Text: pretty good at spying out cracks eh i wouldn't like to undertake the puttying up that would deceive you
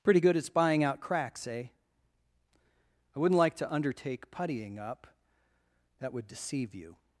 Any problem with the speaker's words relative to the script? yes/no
yes